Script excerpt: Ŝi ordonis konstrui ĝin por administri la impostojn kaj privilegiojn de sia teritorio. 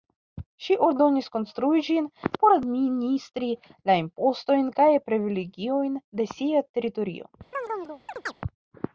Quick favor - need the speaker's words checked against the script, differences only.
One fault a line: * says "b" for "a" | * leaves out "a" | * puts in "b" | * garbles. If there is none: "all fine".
all fine